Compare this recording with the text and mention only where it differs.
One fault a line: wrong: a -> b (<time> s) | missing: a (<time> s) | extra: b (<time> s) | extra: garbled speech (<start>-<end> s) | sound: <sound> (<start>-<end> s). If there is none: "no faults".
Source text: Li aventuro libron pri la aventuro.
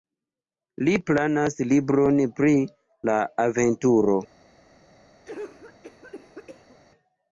wrong: aventuro -> planas (1.1 s)
sound: cough (5.2-6.8 s)